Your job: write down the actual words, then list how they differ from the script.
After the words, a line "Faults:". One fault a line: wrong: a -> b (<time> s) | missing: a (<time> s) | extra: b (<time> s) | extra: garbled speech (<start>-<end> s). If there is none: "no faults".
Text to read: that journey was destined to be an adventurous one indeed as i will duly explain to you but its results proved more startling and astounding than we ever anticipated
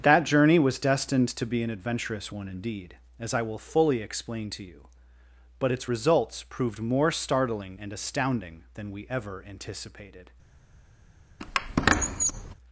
that journey was destined to be an adventurous one indeed as i will fully explain to you but its results proved more startling and astounding than we ever anticipated
Faults:
wrong: duly -> fully (3.6 s)